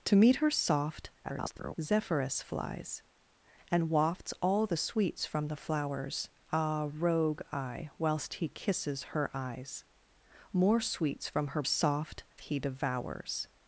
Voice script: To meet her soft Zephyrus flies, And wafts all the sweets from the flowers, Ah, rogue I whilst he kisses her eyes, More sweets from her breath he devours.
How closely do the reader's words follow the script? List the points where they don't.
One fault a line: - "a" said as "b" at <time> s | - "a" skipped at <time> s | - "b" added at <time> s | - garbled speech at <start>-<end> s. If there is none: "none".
- garbled speech at 1.2-1.7 s
- "breath" said as "soft" at 11.6 s